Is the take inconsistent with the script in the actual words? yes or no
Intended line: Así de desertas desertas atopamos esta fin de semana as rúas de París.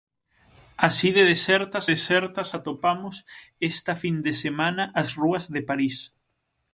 no